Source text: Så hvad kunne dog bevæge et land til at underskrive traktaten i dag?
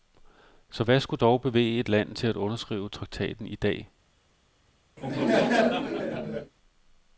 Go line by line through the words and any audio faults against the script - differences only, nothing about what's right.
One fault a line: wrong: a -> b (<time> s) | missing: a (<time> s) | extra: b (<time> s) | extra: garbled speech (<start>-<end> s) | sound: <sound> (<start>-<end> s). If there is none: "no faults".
wrong: kunne -> skulle (1.0 s)
sound: laugh (5.0-6.5 s)